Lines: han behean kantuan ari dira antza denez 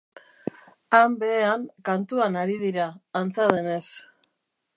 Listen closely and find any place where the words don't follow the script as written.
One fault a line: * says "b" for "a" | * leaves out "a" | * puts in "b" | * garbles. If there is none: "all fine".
all fine